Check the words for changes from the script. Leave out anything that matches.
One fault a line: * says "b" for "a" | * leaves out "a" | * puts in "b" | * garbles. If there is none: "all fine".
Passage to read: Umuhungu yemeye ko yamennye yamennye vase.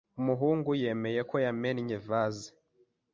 * leaves out "yamennye"